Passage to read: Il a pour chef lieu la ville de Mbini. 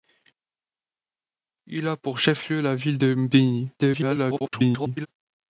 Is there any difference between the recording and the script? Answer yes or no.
yes